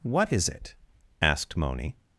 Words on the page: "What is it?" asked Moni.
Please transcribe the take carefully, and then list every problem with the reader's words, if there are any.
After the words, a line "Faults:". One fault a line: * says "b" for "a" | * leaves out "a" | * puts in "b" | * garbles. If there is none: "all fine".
"What is it?" asked Moni.
Faults:
all fine